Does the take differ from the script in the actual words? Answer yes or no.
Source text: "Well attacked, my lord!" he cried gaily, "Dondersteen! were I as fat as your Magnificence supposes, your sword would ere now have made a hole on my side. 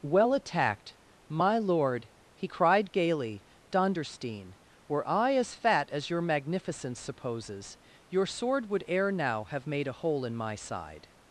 yes